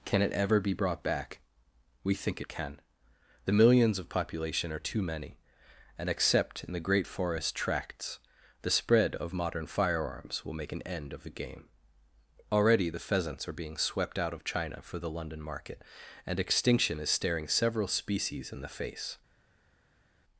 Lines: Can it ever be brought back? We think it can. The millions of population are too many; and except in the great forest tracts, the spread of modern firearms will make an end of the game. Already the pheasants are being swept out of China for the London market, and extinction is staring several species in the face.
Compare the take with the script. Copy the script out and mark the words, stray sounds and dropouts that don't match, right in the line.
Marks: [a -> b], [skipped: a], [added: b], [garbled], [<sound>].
Can it ever be brought back? We think it can. The millions of population are too many; and except in the great forest tracts, the spread of modern firearms will make an end of the game. Already the pheasants are being swept out of China for the London market, and extinction is staring several species in the face.